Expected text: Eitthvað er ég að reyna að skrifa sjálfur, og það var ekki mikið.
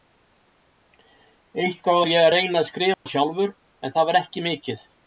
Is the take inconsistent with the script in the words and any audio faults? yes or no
yes